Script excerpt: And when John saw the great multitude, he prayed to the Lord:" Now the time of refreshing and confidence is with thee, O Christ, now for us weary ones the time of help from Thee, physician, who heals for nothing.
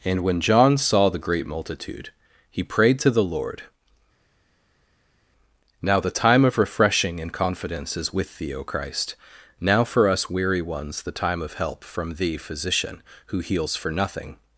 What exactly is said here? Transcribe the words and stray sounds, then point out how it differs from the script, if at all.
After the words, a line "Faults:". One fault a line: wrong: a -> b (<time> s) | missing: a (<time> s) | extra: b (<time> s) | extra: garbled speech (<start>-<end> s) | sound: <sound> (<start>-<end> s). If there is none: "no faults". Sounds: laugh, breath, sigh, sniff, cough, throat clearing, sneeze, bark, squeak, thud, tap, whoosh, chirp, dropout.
And when John saw the great multitude, he prayed to the Lord:" Now the time of refreshing and confidence is with thee, O Christ, now for us weary ones the time of help from Thee, physician, who heals for nothing.
Faults:
no faults